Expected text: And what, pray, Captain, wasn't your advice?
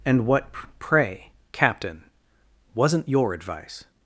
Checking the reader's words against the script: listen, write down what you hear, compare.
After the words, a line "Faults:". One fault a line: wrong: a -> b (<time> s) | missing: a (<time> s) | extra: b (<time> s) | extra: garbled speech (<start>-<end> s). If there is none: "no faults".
And what, pray, Captain, wasn't your advice?
Faults:
no faults